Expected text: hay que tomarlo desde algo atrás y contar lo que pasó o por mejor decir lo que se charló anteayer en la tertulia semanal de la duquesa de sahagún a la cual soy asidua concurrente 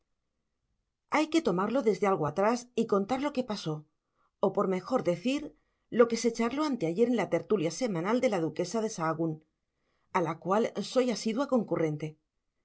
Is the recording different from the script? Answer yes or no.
no